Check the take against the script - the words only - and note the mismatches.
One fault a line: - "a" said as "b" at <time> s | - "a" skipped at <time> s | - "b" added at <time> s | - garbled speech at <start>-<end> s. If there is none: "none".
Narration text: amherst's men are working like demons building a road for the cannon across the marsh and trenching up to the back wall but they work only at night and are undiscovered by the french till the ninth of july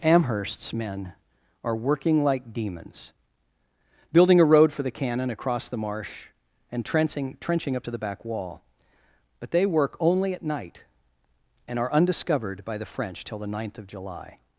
- "trenching" added at 7.4 s